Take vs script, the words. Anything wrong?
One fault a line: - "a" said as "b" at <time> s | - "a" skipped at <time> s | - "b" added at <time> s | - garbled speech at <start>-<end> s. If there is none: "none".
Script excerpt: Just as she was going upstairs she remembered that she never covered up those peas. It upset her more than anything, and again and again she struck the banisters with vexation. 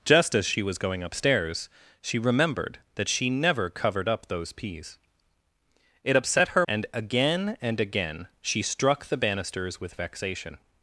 - "more than anything" skipped at 6.7 s